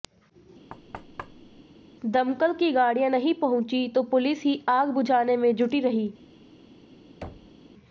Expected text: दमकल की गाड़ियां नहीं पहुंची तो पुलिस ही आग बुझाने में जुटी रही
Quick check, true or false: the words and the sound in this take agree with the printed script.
false